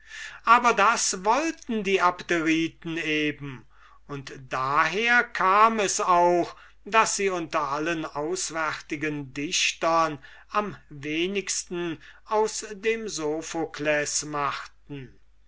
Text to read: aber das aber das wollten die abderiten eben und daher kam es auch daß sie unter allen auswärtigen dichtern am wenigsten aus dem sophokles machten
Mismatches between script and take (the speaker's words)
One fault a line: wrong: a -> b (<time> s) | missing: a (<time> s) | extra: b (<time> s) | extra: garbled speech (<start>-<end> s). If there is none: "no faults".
missing: aber das (1.2 s)